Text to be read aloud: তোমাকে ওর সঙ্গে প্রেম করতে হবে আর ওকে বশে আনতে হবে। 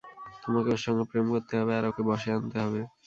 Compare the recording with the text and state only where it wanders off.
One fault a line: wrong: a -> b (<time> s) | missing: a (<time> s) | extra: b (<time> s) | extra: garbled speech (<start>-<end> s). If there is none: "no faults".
no faults